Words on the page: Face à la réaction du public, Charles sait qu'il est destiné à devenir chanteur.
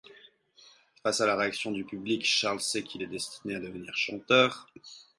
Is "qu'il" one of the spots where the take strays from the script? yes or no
no